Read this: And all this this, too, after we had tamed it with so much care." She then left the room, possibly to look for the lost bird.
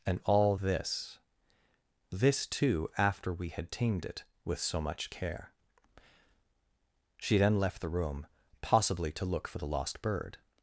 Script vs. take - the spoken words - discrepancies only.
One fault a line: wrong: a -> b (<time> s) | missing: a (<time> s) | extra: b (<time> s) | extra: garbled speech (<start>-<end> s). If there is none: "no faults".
no faults